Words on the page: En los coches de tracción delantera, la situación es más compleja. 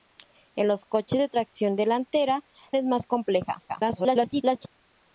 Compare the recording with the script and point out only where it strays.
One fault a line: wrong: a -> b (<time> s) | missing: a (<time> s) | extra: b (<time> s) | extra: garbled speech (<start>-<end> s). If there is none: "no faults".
missing: la situación (2.4 s)
extra: garbled speech (3.7-4.7 s)